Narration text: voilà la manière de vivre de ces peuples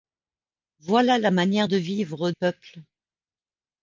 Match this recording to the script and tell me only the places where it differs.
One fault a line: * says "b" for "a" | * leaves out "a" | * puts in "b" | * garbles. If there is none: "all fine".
* leaves out "de ces"